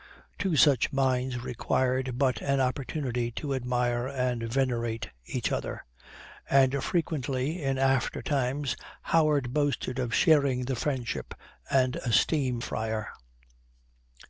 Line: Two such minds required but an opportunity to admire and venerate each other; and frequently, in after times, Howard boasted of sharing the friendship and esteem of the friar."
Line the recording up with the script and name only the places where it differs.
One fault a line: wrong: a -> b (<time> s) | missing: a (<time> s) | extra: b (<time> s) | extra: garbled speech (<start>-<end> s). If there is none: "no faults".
missing: of the (12.6 s)